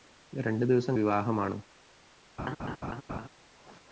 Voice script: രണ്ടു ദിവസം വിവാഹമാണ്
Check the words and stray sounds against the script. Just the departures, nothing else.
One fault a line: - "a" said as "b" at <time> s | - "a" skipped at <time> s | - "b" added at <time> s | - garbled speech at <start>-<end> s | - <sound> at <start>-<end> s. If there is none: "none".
- laugh at 2.4-3.3 s